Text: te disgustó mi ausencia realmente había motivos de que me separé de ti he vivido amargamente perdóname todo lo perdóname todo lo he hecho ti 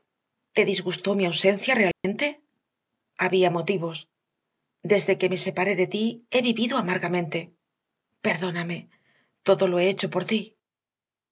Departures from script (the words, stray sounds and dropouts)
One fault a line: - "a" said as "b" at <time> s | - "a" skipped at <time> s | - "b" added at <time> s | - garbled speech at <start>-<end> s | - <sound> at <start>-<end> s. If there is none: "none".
- dropout at 1.9-2.0 s
- "de" said as "desde" at 4.8 s
- "perdóname todo lo" skipped at 9.8 s
- "por" added at 10.1 s